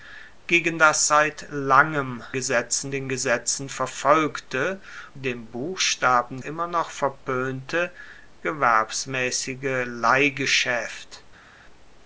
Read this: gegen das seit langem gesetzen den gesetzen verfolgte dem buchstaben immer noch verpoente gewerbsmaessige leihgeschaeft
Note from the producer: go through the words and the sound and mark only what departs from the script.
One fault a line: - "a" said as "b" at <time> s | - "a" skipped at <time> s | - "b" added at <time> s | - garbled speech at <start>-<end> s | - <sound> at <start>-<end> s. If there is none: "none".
none